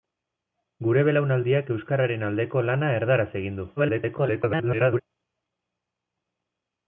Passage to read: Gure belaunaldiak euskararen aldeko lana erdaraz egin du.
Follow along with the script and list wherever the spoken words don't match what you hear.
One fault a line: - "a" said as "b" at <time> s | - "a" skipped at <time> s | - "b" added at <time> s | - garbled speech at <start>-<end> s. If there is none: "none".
- garbled speech at 3.8-5.0 s